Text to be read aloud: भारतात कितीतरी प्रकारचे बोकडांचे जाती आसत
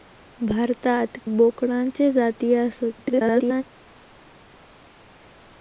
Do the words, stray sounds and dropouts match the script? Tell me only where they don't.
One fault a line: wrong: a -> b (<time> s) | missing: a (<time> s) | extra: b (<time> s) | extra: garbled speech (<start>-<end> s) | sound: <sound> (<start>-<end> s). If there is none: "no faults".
missing: कितीतरी प्रकारचे (1.2 s)
extra: garbled speech (3.0-3.6 s)